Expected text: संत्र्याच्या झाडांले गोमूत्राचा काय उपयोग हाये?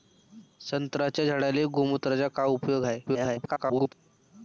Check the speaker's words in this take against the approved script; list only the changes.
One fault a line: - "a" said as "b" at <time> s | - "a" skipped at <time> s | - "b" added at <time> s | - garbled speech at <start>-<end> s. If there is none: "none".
- garbled speech at 3.1-3.9 s